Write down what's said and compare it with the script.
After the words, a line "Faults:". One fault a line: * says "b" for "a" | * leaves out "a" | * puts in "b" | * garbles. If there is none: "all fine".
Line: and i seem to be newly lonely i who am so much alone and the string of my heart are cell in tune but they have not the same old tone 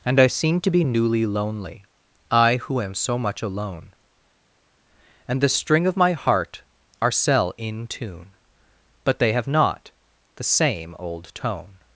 and i seem to be newly lonely i who am so much alone and the string of my heart are cell in tune but they have not the same old tone
Faults:
all fine